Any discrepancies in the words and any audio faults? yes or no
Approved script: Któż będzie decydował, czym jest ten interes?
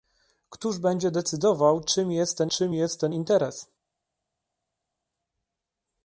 yes